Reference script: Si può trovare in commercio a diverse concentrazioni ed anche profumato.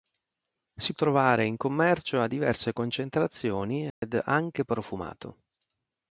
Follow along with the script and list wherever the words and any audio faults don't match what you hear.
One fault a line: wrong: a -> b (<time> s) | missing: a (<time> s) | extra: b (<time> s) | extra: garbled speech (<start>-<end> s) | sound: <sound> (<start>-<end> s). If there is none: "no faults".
missing: può (0.9 s)
sound: dropout (3.9-4.0 s)